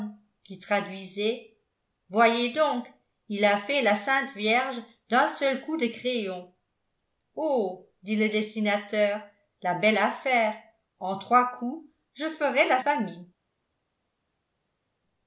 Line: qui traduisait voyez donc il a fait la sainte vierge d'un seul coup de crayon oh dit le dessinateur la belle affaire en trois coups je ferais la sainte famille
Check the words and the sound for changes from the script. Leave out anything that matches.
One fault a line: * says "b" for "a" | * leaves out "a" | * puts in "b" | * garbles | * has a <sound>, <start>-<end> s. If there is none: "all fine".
* leaves out "sainte"